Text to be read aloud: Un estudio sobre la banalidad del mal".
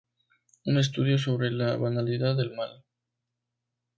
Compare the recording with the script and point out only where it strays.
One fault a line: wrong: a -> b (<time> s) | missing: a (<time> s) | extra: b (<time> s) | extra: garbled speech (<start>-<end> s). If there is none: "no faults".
no faults